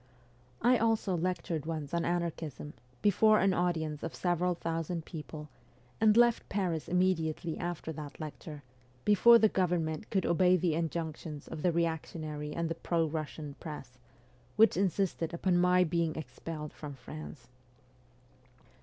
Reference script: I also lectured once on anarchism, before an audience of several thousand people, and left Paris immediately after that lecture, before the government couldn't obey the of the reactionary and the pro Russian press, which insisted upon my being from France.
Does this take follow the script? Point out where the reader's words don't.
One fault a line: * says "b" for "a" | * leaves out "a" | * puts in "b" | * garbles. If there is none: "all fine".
* says "could" for "couldn't"
* puts in "injunctions"
* puts in "expelled"